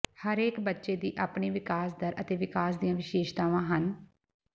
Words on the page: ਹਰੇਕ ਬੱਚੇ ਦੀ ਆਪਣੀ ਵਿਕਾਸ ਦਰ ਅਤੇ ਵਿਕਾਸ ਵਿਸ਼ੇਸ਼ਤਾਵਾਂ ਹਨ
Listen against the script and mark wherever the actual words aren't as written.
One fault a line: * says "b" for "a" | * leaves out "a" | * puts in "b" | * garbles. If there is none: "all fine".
* puts in "ਦੀਆਂ"